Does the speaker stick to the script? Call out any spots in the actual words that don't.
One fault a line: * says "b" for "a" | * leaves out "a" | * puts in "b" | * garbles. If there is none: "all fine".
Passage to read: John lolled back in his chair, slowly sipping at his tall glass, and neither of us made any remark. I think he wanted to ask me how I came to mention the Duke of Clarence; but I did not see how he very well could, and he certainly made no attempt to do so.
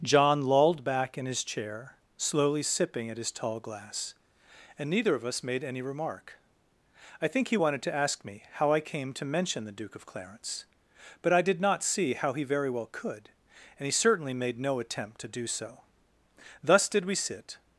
* puts in "Thus did we sit"